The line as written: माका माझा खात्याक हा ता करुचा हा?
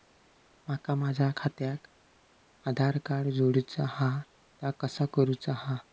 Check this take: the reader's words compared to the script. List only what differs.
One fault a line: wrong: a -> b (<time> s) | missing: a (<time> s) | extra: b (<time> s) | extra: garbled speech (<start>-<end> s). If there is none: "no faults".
extra: आधार कार्ड जोडूचा (2.6 s)
extra: कसा (4.8 s)